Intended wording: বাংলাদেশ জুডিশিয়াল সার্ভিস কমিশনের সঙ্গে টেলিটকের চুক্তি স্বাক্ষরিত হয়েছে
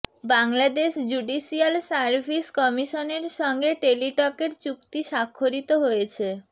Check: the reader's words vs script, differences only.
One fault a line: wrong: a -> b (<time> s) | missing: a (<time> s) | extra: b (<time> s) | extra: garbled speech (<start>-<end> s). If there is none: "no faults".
no faults